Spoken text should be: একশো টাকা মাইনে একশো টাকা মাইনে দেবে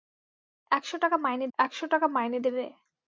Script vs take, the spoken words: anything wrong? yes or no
no